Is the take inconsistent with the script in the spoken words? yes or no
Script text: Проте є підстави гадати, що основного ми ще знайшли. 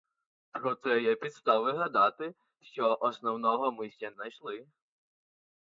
no